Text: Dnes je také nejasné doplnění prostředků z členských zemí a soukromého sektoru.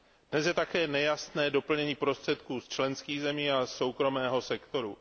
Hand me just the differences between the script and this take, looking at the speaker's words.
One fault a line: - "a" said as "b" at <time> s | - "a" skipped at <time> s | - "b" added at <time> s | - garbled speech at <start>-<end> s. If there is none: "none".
none